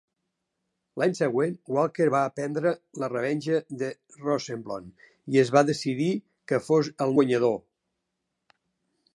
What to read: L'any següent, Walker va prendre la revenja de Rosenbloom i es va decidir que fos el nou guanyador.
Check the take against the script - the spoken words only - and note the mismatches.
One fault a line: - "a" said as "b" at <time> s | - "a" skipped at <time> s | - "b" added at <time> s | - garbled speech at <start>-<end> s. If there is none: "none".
- "nou" skipped at 7.2 s